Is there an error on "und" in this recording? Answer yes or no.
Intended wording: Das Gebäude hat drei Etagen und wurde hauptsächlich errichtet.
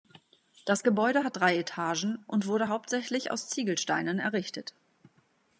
no